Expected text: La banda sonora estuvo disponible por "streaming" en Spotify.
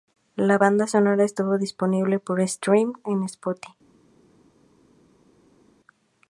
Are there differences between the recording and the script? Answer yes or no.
no